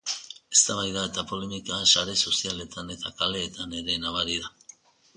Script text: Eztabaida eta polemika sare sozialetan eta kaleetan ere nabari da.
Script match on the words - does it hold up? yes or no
yes